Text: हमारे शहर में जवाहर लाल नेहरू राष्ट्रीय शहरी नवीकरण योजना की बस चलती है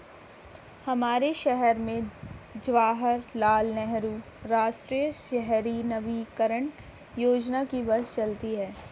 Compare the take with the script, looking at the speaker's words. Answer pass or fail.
pass